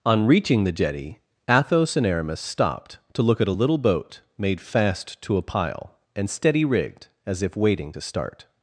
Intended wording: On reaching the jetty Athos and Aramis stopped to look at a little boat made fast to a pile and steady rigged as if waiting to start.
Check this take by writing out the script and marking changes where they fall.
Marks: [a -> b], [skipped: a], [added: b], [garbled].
On reaching the jetty Athos and Aramis stopped to look at a little boat made fast to a pile and steady rigged as if waiting to start.